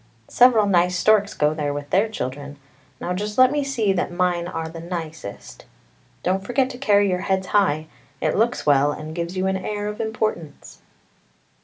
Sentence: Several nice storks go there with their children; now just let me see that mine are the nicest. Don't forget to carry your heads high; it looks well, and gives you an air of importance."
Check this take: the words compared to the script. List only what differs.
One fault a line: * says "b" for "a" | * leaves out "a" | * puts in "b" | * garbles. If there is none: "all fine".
all fine